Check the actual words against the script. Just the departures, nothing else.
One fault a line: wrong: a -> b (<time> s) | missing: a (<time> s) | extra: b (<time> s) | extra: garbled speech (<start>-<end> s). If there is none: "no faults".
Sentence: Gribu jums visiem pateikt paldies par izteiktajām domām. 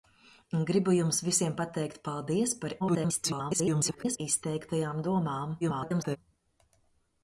extra: garbled speech (2.8-4.2 s)
extra: garbled speech (5.6-6.2 s)